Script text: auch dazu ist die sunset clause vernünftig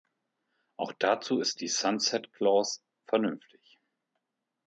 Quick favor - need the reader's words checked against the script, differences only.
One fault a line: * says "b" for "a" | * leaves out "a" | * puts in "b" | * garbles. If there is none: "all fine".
all fine